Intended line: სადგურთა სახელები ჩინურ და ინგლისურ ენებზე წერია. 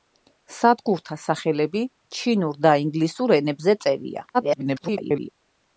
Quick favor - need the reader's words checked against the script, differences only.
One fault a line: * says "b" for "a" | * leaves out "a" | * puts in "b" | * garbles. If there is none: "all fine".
* garbles